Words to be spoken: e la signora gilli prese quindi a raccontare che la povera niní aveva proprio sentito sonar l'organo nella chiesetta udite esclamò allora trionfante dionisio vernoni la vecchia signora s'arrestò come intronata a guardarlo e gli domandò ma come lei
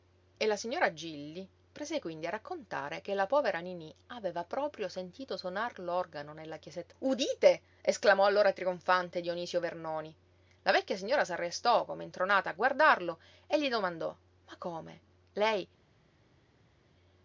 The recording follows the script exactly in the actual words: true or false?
true